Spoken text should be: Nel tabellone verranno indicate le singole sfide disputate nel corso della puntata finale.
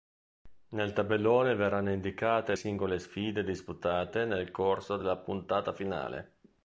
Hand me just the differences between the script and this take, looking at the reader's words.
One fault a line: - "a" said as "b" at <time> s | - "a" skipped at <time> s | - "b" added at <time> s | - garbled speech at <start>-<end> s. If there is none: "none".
- "le" skipped at 2.5 s